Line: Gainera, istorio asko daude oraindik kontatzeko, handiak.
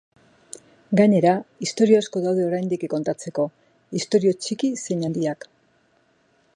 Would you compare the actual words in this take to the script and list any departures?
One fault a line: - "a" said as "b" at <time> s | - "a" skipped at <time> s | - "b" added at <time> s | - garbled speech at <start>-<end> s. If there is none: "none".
- "istorio txiki zein" added at 4.0 s